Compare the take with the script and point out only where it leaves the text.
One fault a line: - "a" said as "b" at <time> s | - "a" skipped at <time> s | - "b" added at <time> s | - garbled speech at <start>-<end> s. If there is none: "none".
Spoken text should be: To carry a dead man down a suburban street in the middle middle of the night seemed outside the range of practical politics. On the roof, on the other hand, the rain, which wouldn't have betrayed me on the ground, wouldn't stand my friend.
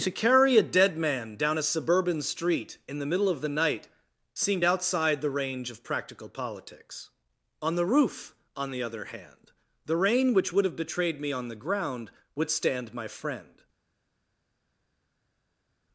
- "middle" skipped at 3.3 s
- "wouldn't" said as "would" at 10.5 s
- "wouldn't" said as "would" at 12.4 s